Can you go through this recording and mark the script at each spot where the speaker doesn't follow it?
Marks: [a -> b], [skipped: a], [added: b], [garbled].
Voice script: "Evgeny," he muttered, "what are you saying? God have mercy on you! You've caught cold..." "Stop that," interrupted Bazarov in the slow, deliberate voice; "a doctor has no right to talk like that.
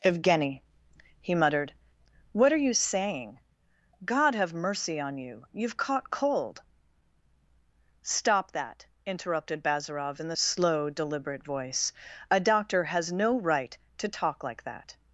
"Evgeny," he muttered, "what are you saying? God have mercy on you! You've caught cold..." "Stop that," interrupted Bazarov in the slow, deliberate voice; "a doctor has no right to talk like that.